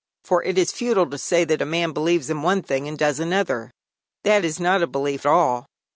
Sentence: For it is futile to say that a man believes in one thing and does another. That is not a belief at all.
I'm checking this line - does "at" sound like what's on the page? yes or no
no